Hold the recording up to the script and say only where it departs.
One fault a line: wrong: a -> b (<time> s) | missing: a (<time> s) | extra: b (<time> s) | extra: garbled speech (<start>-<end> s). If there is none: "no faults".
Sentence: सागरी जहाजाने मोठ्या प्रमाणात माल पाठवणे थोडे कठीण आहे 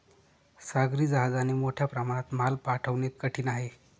missing: थोडे (3.1 s)